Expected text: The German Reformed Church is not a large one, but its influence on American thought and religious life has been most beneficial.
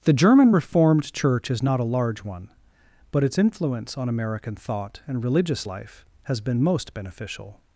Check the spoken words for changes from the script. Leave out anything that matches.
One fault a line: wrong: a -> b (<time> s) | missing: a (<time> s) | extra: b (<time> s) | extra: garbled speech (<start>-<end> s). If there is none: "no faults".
no faults